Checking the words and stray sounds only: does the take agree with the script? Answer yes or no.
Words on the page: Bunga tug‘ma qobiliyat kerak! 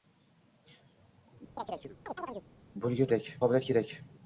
no